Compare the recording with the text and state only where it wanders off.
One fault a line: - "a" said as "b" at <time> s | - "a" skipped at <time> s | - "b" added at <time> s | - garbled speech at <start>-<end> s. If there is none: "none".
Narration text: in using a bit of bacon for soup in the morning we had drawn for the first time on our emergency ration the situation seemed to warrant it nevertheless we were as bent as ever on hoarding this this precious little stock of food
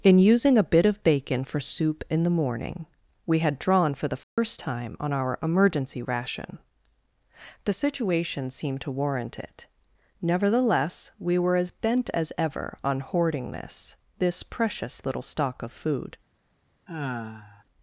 none